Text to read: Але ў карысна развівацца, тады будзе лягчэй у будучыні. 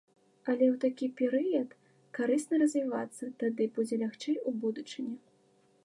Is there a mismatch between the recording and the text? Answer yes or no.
yes